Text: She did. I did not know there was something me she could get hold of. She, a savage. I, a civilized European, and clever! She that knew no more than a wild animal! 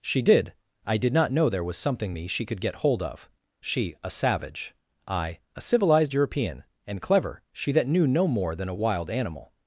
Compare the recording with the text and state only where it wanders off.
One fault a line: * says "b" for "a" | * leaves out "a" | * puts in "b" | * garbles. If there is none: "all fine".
all fine